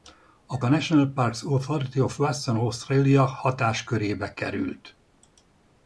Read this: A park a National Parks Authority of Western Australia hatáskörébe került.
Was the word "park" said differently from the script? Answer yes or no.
yes